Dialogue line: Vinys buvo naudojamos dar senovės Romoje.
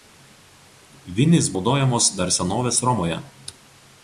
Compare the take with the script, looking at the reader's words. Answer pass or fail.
fail